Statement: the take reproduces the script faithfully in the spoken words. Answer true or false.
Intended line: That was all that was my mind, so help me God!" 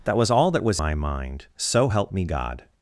true